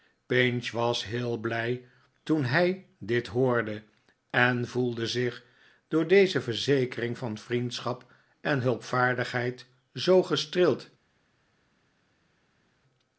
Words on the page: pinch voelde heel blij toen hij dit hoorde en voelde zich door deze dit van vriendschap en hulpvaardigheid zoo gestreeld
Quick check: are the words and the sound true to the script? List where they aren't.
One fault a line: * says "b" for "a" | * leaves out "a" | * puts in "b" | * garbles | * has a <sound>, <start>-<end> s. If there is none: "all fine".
* says "was" for "voelde"
* says "verzekering" for "dit"